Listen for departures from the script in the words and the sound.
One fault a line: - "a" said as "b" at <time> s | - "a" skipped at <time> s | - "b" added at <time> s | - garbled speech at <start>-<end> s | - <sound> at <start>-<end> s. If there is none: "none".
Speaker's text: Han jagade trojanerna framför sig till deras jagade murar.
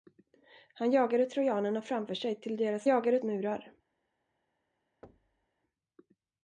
- thud at 5.0-5.5 s